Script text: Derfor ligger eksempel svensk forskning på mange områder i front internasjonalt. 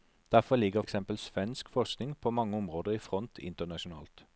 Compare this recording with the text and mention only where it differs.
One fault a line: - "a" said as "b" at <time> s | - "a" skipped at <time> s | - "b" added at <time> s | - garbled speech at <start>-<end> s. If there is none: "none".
none